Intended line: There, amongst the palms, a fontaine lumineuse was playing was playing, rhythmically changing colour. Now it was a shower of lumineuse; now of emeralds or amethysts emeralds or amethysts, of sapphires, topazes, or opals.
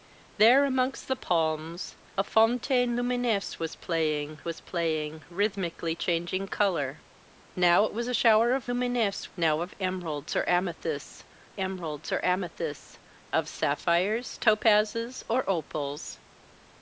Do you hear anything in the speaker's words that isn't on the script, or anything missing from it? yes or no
no